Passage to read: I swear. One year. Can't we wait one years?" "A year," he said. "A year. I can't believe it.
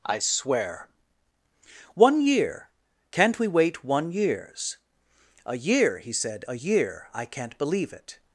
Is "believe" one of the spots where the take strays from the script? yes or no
no